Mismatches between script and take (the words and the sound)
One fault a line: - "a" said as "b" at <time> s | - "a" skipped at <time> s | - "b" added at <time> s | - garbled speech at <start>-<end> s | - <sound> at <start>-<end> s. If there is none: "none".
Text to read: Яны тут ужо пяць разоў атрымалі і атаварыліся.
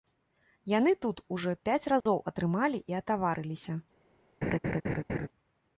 - dropout at 2.0-2.1 s
- laugh at 4.4-5.3 s